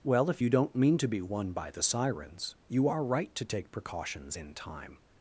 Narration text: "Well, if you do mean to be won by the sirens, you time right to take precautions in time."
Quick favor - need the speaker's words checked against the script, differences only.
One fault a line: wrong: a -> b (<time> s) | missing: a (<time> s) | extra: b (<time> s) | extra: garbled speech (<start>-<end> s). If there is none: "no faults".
wrong: do -> don't (0.5 s)
wrong: time -> are (2.9 s)